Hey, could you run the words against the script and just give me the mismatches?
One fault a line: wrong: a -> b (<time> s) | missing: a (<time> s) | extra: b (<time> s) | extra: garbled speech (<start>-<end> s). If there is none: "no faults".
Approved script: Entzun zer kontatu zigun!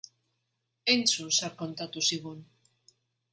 no faults